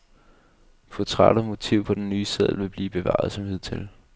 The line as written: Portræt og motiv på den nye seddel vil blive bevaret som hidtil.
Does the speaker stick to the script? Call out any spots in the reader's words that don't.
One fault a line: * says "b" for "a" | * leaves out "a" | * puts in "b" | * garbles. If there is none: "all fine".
all fine